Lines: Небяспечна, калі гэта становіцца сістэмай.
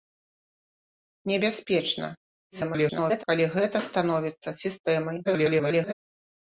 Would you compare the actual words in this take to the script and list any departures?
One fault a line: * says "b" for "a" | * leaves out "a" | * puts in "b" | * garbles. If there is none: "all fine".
* garbles
* garbles